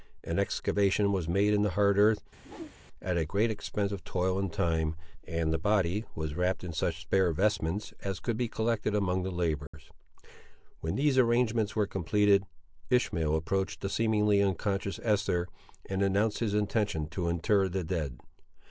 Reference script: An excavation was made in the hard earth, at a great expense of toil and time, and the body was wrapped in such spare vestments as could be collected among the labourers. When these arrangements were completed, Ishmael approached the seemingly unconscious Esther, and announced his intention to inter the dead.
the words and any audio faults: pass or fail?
fail